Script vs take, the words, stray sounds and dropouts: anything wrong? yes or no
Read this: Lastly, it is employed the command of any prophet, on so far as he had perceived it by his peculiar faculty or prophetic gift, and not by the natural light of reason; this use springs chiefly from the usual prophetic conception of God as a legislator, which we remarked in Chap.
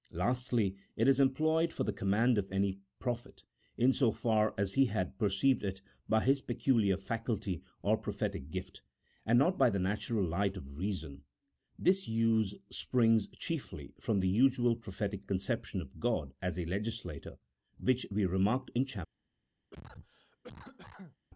yes